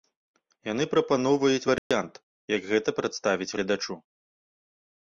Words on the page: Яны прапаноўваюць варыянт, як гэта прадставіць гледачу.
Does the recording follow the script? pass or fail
pass